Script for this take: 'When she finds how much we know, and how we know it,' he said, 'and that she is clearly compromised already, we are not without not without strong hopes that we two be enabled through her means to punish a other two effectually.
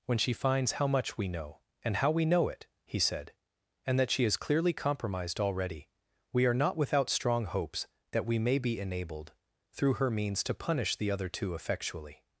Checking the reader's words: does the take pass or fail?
fail